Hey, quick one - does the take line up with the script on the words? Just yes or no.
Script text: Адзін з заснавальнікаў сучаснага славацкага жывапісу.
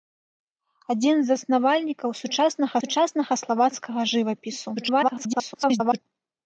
no